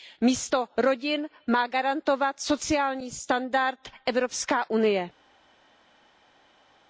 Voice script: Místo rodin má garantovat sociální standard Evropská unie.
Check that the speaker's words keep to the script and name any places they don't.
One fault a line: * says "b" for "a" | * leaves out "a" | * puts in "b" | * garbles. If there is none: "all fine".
all fine